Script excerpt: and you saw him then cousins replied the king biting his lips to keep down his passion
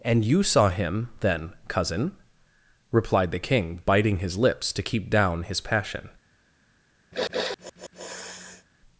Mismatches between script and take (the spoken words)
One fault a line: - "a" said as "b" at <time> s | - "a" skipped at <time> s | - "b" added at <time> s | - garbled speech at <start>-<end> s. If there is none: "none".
- "cousins" said as "cousin" at 1.7 s